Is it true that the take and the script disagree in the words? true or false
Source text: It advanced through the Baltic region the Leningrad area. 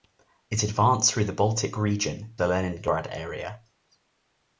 false